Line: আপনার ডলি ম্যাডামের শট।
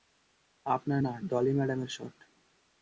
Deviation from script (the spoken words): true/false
true